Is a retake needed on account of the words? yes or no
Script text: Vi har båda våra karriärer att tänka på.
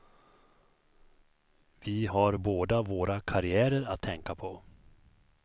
no